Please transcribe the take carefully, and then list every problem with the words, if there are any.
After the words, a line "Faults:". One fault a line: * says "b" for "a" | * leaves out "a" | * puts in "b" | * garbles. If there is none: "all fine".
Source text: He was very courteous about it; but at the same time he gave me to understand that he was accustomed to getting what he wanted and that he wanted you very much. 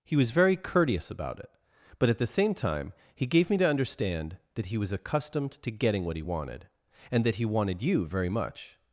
He was very courteous about it; but at the same time he gave me to understand that he was accustomed to getting what he wanted and that he wanted you very much.
Faults:
all fine